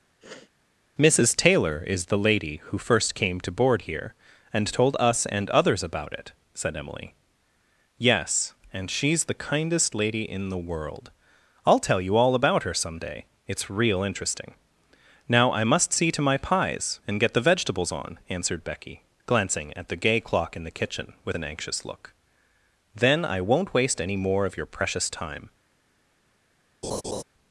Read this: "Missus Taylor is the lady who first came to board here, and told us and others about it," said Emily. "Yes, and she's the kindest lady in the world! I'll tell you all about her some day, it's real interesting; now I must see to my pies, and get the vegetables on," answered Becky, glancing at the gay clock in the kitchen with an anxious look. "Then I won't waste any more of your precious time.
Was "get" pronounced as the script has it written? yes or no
yes